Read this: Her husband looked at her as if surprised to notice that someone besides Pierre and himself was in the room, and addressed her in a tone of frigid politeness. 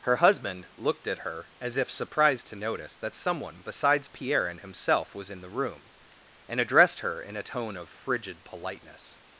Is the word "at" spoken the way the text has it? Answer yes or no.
yes